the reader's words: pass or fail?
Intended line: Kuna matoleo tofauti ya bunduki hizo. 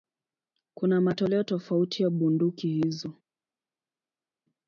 pass